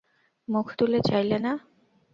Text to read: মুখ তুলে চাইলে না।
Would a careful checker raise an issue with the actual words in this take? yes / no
no